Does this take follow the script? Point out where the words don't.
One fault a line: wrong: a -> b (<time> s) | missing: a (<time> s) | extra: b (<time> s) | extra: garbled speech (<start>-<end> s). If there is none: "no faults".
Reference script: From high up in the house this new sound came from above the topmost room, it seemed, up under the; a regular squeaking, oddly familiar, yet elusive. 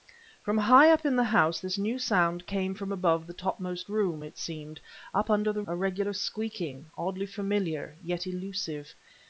no faults